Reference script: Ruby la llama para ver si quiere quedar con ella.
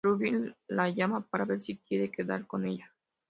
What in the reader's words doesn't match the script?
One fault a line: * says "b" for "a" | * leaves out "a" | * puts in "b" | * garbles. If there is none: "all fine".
all fine